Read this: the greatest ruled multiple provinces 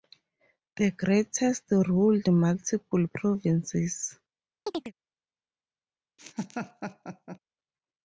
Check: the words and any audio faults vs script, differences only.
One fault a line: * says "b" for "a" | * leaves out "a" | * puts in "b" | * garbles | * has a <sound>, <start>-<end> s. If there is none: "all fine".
* has a chirp, 4.7-4.9 s
* has a laugh, 6.2-7.4 s